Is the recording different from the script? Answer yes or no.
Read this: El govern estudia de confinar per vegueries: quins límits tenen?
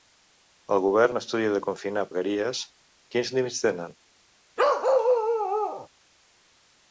yes